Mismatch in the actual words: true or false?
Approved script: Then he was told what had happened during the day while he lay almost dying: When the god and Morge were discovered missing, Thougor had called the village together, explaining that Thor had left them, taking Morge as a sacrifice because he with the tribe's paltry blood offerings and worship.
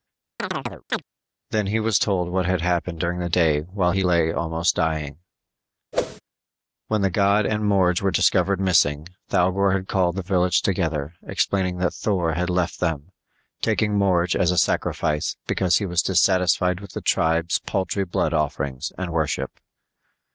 true